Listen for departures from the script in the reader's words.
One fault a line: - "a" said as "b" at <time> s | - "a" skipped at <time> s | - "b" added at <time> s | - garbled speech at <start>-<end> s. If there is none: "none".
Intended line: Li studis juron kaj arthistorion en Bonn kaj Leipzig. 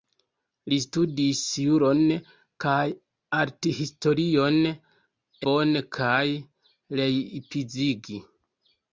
- "en" skipped at 4.6 s